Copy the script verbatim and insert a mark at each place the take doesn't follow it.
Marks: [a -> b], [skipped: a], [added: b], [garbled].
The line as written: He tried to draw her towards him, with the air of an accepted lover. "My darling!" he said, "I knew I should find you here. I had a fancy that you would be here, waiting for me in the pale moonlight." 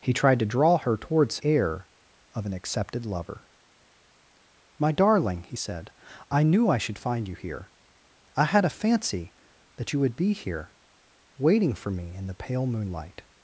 He tried to draw her towards [skipped: him, with the] air of an accepted lover. "My darling!" he said, "I knew I should find you here. I had a fancy that you would be here, waiting for me in the pale moonlight."